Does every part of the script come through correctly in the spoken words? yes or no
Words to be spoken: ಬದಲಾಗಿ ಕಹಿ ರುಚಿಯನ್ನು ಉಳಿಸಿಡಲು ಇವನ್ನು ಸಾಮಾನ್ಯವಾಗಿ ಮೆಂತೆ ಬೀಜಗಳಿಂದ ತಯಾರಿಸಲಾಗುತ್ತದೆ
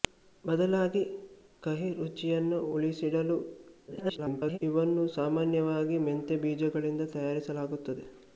no